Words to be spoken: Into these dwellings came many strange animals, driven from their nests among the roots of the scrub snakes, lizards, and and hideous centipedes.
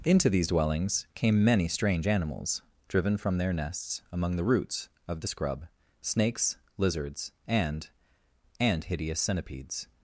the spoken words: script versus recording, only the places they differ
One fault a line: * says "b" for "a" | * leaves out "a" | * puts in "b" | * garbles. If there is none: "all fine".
all fine